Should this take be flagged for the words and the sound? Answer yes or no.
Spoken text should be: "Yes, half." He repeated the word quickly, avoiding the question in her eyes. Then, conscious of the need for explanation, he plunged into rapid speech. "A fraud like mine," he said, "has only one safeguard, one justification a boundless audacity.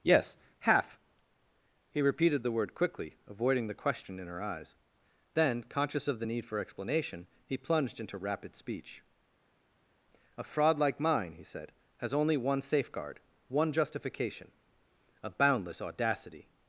no